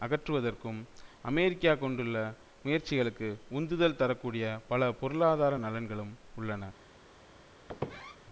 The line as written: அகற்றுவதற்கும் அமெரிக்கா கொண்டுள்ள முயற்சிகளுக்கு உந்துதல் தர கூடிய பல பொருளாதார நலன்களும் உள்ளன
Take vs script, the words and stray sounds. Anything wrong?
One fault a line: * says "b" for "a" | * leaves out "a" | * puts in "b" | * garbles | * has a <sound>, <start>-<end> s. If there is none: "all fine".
* has a squeak, 7.7-8.2 s